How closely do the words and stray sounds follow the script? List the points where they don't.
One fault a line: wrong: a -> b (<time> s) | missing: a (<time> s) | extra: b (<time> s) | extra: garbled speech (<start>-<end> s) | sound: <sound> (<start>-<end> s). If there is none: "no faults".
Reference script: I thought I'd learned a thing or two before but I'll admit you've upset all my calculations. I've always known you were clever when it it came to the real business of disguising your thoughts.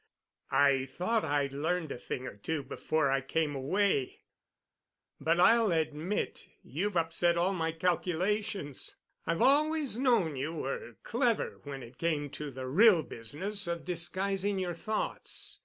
extra: I came away (3.1 s)
missing: it (12.0 s)